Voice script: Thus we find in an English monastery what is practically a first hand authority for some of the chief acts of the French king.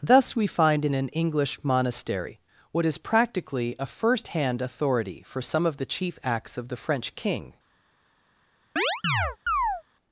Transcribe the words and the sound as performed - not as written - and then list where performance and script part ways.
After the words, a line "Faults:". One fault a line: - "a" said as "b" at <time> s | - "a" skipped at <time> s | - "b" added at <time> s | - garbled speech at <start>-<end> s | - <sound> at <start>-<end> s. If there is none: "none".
Thus we find in an English monastery what is practically a first hand authority for some of the chief acts of the French king.
Faults:
- chirp at 8.8-9.8 s